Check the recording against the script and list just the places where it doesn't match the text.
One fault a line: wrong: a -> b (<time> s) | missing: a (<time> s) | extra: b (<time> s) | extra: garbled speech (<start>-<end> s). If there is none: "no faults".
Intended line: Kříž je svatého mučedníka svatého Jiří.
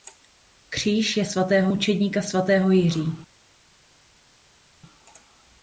no faults